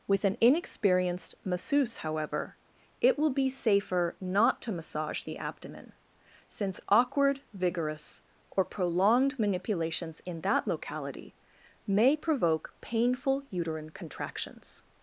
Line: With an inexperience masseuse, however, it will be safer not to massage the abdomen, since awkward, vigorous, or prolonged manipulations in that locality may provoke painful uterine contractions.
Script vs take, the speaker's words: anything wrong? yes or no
yes